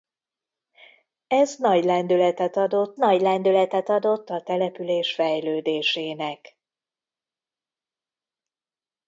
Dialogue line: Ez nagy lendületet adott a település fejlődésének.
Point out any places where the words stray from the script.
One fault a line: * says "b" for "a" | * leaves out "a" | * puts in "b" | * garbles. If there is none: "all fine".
* puts in "nagy lendületet adott"